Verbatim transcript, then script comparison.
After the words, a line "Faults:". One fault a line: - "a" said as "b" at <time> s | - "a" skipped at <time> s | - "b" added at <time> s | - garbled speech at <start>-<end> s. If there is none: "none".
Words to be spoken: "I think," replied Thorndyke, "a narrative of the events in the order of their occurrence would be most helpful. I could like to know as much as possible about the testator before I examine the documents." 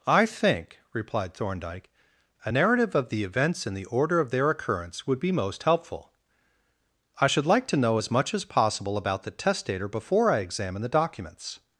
"I think," replied Thorndyke, "a narrative of the events in the order of their occurrence would be most helpful. I should like to know as much as possible about the testator before I examine the documents."
Faults:
- "could" said as "should" at 7.3 s